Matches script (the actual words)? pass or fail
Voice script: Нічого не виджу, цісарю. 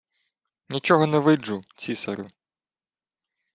pass